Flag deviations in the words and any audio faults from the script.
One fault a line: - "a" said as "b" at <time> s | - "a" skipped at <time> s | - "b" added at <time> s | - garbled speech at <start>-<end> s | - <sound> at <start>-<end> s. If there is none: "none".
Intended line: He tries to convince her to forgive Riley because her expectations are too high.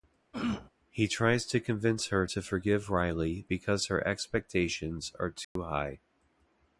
- throat clearing at 0.3-0.7 s
- dropout at 5.4-5.6 s